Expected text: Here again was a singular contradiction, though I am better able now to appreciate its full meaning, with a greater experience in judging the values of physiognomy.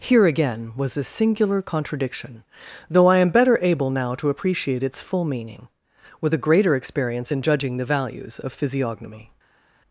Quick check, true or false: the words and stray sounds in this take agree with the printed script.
true